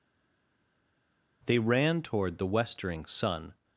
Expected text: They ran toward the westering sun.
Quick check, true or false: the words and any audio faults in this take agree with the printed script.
true